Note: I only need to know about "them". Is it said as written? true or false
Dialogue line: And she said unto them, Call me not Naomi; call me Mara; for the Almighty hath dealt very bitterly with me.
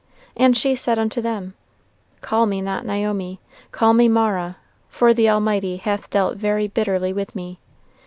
true